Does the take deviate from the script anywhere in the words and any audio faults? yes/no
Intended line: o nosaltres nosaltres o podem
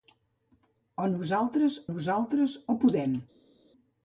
no